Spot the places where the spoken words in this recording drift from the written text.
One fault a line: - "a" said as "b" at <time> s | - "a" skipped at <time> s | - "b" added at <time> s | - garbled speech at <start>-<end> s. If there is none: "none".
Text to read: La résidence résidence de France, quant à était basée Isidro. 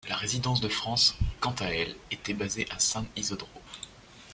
- "résidence" skipped at 0.6 s
- "elle" added at 1.7 s
- "à San" added at 2.7 s